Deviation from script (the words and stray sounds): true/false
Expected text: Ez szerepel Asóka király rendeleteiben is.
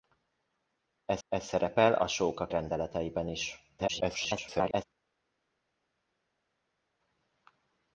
true